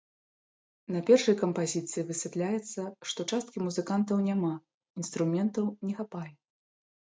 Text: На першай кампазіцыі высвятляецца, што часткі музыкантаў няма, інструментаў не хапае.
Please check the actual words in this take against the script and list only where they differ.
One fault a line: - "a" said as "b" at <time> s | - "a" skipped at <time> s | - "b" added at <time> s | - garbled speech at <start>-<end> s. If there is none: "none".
none